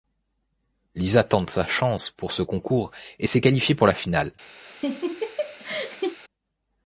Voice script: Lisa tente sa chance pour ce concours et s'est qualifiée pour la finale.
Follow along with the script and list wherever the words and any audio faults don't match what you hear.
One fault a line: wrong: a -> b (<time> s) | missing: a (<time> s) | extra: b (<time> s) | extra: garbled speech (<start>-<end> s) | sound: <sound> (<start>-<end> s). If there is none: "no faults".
sound: laugh (4.6-6.2 s)